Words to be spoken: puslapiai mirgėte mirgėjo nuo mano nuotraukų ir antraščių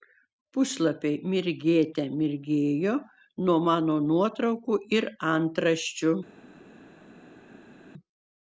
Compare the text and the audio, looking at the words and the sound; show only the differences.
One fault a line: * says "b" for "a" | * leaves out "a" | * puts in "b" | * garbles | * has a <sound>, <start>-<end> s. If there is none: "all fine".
all fine